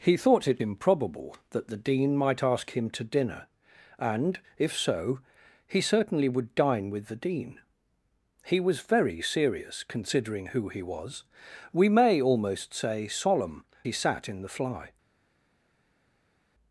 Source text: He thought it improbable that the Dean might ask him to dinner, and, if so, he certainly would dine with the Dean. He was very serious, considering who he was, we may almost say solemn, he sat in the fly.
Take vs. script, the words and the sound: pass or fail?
pass